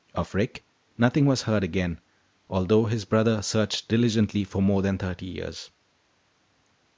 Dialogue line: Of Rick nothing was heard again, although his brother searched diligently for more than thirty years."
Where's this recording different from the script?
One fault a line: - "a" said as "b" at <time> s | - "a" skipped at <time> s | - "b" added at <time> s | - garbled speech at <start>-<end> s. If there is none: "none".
none